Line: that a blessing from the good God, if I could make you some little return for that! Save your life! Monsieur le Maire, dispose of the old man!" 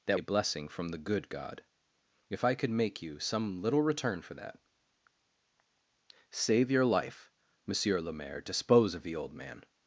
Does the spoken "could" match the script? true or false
true